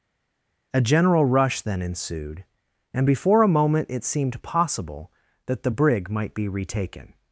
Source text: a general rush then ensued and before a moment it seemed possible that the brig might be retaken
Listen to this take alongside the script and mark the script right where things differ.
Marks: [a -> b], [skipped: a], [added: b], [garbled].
a general rush then ensued and before a moment it seemed possible that the brig might be retaken